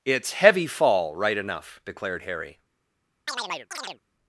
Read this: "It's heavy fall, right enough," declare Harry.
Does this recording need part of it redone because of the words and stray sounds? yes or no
yes